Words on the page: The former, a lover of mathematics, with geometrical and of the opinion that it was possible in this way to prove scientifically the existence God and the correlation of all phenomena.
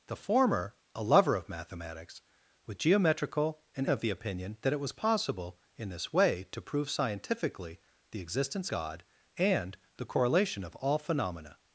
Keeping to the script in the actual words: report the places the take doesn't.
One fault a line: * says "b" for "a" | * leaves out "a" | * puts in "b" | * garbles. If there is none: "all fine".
all fine